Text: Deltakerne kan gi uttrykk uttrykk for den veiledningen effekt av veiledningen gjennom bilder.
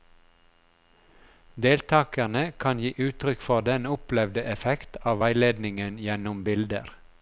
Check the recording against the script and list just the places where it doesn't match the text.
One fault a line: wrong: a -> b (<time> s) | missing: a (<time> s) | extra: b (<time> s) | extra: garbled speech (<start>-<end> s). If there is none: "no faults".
missing: uttrykk (3.5 s)
wrong: veiledningen -> opplevde (3.9 s)